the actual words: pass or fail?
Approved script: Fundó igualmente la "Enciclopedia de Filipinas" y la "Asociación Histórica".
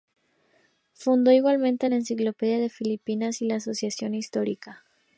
pass